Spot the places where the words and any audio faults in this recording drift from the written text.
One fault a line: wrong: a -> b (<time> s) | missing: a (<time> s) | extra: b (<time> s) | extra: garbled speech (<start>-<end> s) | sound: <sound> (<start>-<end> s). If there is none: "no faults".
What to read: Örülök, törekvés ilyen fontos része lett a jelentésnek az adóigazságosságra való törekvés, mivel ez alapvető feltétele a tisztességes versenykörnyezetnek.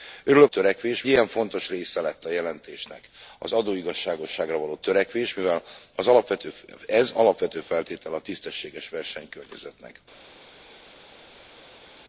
no faults